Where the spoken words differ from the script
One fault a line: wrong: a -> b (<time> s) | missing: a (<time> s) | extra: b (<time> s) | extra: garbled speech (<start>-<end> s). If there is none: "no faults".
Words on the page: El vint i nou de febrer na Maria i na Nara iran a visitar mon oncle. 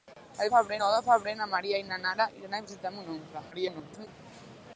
wrong: vint -> febrer (0.5 s)
extra: garbled speech (3.5-4.1 s)